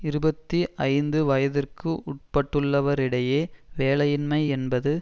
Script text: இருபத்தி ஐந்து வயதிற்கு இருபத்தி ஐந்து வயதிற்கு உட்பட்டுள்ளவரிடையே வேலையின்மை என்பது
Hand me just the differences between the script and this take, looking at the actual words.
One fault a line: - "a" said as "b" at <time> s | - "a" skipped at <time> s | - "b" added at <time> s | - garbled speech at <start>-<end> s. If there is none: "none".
- "இருபத்தி ஐந்து வயதிற்கு" skipped at 1.9 s